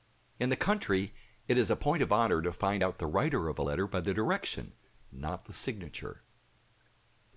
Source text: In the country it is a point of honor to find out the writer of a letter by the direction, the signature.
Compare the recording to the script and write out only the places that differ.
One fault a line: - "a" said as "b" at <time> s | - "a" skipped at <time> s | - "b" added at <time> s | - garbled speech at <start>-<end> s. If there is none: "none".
- "not" added at 5.1 s